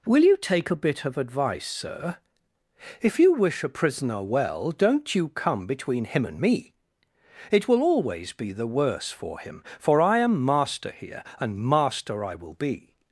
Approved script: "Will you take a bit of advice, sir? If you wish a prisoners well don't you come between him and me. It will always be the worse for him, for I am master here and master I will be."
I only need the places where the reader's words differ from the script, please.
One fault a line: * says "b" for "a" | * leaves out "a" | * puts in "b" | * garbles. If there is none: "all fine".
* says "prisoner" for "prisoners"